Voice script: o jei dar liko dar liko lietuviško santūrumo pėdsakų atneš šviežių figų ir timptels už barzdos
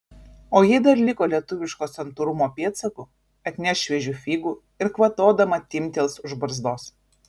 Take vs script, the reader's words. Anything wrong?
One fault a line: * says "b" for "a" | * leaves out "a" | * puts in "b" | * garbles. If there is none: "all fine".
* leaves out "dar liko"
* puts in "kvatodama"